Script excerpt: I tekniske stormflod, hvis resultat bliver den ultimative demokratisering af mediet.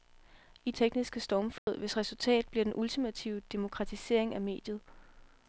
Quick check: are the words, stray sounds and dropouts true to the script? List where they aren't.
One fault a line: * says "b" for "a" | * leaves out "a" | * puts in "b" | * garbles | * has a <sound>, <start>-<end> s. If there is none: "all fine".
* has a dropout, 1.6-1.7 s